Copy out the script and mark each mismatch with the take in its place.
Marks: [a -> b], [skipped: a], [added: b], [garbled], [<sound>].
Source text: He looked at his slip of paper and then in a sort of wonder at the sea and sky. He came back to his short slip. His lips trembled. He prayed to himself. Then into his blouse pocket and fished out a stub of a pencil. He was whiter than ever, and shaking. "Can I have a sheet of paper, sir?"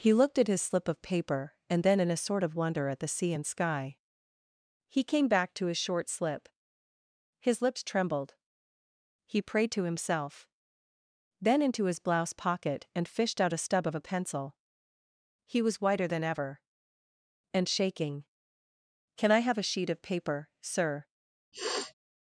He looked at his slip of paper and then in a sort of wonder at the sea and sky. He came back to his short slip. His lips trembled. He prayed to himself. Then into his blouse pocket and fished out a stub of a pencil. He was whiter than ever, and shaking. "Can I have a sheet of paper, sir?" [sniff]